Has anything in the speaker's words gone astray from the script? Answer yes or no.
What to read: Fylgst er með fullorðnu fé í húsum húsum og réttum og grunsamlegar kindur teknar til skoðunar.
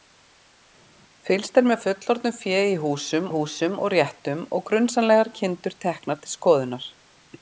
no